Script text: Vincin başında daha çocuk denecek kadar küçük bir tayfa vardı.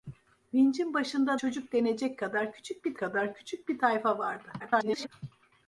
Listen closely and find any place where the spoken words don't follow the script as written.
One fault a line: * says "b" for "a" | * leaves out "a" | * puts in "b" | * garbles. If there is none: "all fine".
* leaves out "daha"
* puts in "kadar küçük bir"
* garbles